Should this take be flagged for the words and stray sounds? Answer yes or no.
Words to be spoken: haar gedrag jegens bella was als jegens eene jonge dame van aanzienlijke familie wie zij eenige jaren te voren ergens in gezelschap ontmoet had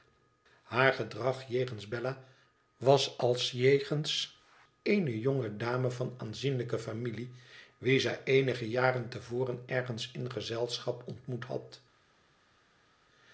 no